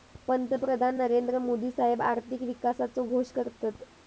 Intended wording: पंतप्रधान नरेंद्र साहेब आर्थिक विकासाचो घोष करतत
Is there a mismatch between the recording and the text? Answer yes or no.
yes